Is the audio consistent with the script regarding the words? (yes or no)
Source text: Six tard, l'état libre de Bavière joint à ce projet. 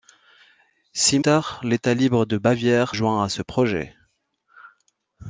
yes